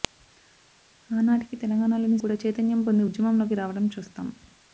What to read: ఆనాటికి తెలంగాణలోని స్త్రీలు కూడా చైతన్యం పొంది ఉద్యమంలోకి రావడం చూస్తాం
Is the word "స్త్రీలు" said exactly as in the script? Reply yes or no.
no